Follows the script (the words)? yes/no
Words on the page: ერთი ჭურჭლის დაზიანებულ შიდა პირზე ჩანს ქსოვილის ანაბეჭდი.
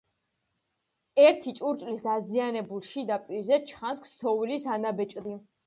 yes